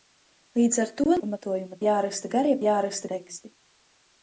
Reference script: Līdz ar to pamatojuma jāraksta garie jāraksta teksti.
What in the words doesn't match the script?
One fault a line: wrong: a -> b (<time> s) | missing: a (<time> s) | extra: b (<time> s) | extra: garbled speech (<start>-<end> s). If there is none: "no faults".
no faults